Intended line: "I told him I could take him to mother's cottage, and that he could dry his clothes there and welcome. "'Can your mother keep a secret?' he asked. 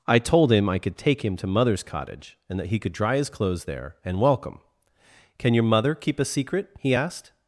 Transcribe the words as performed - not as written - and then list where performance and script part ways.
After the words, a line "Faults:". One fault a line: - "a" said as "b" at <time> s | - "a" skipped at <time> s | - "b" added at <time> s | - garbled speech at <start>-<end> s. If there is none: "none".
"I told him I could take him to mother's cottage, and that he could dry his clothes there and welcome. "'Can your mother keep a secret?' he asked.
Faults:
none